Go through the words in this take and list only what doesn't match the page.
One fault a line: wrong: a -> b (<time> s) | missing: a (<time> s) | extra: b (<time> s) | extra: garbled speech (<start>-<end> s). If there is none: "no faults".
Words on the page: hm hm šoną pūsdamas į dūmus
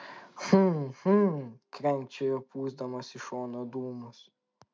wrong: šoną -> krenkščiojo (1.8 s)
extra: šoną (3.3 s)